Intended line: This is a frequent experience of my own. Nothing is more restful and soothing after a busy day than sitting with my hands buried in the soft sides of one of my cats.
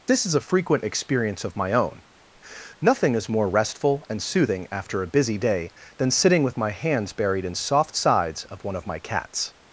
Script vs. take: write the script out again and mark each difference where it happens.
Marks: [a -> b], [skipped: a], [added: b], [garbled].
This is a frequent experience of my own. Nothing is more restful and soothing after a busy day than sitting with my hands buried in [skipped: the] soft sides of one of my cats.